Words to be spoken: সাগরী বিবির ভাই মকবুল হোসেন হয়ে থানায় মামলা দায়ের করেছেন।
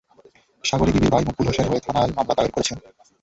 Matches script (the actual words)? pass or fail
pass